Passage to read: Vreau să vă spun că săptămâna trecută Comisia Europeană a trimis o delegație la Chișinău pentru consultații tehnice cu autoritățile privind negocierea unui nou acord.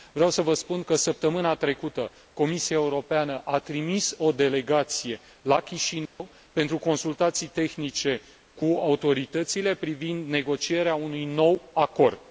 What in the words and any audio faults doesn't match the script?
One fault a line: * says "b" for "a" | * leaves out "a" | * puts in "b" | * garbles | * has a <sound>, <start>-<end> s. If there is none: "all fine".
* has a dropout, 6.1-6.2 s